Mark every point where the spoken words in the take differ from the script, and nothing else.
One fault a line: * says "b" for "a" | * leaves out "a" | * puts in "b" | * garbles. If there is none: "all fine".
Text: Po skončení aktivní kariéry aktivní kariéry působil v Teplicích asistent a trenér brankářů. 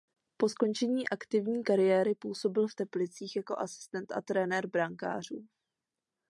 * leaves out "aktivní kariéry"
* puts in "jako"